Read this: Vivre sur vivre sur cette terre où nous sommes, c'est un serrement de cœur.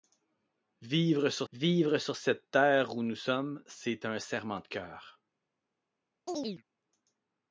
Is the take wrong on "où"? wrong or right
right